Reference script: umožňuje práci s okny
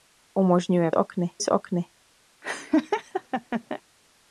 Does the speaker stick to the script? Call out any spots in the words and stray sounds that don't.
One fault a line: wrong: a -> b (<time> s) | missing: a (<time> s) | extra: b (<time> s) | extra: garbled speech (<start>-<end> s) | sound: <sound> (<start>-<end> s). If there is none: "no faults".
wrong: práci -> okny (0.9 s)
sound: laugh (2.4-3.8 s)